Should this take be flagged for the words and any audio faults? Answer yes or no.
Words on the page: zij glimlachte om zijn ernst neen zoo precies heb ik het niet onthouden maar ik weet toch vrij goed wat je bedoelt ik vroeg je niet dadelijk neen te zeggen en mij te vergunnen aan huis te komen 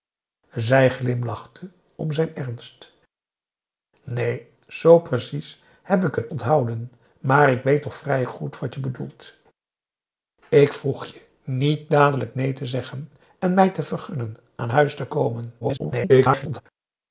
yes